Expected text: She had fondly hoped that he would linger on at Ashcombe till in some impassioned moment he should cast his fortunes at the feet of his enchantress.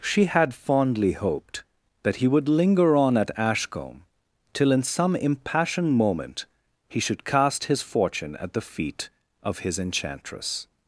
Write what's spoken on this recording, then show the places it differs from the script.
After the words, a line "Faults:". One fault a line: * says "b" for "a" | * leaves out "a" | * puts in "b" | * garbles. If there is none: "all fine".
She had fondly hoped that he would linger on at Ashcombe till in some impassioned moment he should cast his fortune at the feet of his enchantress.
Faults:
* says "fortune" for "fortunes"